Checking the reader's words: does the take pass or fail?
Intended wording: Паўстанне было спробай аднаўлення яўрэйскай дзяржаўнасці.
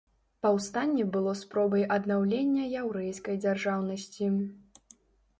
pass